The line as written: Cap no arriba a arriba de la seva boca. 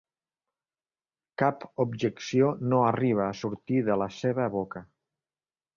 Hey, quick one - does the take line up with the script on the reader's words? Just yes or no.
no